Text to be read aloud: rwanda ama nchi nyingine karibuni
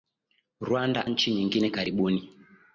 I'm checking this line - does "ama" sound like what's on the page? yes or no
no